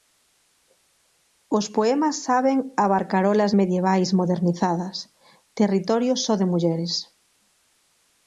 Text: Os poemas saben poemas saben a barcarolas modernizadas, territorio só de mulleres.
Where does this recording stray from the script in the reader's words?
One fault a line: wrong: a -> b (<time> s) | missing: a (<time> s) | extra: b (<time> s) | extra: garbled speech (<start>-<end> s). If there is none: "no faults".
missing: poemas saben (2.6 s)
extra: medievais (3.6 s)